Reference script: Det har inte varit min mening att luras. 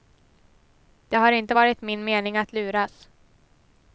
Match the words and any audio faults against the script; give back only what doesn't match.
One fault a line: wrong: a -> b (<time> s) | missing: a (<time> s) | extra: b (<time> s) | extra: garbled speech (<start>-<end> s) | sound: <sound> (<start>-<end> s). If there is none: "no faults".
no faults